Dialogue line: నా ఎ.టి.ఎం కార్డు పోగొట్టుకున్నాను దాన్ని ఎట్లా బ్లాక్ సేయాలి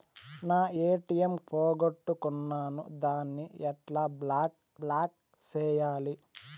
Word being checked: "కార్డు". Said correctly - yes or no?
no